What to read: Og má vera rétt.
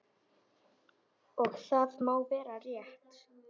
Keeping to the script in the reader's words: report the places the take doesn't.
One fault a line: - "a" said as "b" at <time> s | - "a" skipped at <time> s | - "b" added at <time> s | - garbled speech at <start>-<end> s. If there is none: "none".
- "það" added at 1.6 s